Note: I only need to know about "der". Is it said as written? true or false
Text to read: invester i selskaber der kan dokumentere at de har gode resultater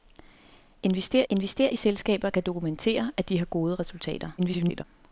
false